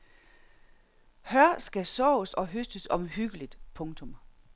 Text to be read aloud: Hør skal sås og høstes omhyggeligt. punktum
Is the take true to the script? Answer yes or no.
yes